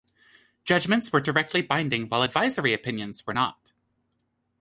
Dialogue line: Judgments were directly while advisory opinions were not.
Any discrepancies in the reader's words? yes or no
yes